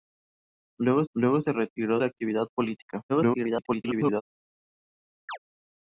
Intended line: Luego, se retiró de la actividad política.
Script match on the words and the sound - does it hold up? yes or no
no